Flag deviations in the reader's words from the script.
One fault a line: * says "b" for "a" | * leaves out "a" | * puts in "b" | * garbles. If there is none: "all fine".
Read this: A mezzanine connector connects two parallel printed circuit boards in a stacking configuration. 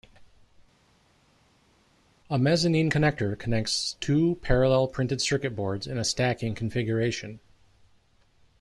all fine